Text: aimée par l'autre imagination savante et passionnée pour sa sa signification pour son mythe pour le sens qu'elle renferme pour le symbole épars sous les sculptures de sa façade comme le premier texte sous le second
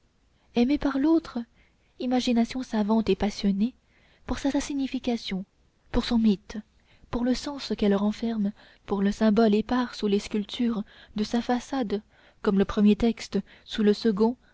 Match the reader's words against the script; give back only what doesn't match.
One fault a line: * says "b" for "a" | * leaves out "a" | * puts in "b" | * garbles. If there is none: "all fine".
all fine